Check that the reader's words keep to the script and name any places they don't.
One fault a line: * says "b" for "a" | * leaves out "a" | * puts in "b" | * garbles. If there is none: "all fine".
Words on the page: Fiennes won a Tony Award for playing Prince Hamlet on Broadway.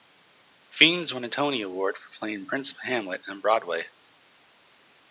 all fine